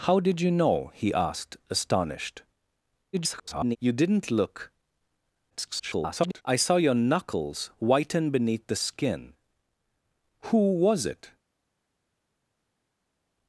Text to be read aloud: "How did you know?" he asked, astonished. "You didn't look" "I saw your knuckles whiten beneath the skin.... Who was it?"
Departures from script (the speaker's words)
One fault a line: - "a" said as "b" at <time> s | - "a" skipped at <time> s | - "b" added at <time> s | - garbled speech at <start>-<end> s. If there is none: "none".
- garbled speech at 3.1-3.8 s
- garbled speech at 5.5-6.4 s